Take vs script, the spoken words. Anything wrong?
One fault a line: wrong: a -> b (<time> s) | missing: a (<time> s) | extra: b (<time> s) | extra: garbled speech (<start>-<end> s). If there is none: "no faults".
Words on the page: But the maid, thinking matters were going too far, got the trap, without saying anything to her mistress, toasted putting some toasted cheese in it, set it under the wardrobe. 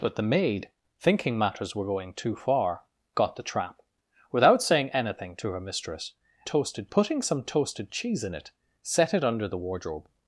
no faults